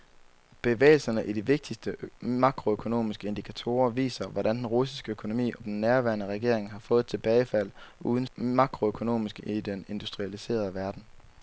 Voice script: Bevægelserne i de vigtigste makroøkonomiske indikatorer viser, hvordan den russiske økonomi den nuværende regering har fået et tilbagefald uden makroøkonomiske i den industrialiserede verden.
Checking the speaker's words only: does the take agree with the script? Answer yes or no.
yes